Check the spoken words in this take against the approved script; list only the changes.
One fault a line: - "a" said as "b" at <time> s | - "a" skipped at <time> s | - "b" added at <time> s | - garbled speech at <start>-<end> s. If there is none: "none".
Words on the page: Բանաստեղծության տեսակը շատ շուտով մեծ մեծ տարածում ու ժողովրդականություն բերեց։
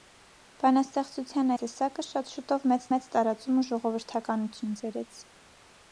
none